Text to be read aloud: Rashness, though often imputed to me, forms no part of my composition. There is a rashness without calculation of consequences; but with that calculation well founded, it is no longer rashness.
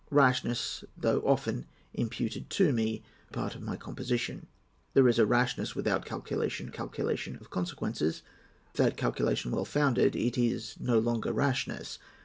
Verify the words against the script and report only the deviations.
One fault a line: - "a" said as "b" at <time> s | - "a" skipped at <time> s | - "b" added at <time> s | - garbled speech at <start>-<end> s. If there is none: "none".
- "forms no" skipped at 3.0 s
- "calculation" added at 6.7 s
- "but with" skipped at 8.2 s